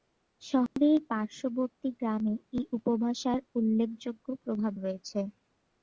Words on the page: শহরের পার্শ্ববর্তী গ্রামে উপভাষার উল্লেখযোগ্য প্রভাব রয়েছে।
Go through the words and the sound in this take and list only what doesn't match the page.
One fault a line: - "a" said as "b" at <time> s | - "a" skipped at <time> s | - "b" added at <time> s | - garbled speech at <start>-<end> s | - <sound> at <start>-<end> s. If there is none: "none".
- dropout at 0.7-0.8 s
- "এই" added at 2.5 s